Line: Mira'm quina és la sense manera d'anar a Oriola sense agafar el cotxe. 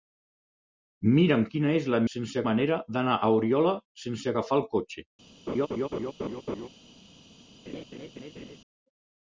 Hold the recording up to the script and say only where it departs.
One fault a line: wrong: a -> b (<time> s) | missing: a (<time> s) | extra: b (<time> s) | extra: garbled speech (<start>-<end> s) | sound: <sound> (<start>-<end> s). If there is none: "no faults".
sound: laugh (5.5-6.7 s)
sound: laugh (7.7-8.6 s)